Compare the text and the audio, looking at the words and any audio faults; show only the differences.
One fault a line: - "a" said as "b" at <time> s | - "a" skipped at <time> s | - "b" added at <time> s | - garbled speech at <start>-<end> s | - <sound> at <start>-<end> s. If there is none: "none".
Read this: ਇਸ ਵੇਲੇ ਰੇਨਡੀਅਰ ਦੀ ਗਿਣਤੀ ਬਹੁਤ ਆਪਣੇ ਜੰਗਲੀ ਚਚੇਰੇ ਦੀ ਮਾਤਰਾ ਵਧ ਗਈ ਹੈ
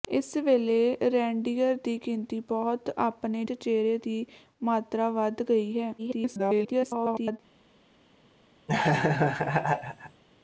- "ਜੰਗਲੀ" skipped at 3.4 s
- garbled speech at 6.0-7.4 s
- laugh at 8.7-10.2 s